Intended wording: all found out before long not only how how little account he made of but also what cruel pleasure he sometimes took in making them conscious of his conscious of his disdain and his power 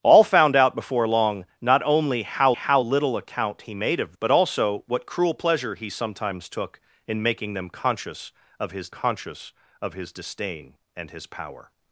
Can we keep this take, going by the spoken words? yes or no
yes